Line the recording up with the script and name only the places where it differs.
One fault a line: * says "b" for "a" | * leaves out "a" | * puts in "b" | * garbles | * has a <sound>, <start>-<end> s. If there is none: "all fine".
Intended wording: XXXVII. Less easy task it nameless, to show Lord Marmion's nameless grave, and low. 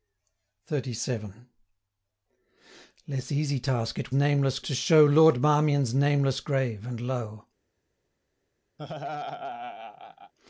* has a laugh, 8.8-10.3 s